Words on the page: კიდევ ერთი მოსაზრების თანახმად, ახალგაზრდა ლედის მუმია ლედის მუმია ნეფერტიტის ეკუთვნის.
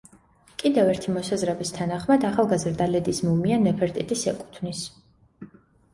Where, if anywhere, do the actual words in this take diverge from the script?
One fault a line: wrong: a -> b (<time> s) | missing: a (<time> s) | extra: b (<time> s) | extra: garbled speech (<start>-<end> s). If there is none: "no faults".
missing: ლედის მუმია (3.6 s)